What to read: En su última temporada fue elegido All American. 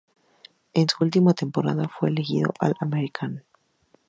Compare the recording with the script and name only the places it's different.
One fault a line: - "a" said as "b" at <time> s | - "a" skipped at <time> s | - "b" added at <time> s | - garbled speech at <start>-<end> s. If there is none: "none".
none